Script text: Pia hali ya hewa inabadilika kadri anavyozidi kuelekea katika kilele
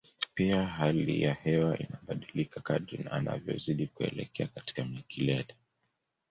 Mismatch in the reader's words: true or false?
false